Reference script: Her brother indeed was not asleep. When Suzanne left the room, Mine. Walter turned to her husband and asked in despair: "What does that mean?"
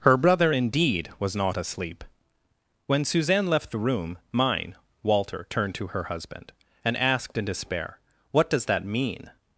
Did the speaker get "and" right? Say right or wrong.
right